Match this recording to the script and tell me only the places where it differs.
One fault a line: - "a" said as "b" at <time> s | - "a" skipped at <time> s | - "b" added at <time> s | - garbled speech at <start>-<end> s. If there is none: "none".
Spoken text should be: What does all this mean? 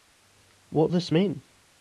- "does all" skipped at 0.9 s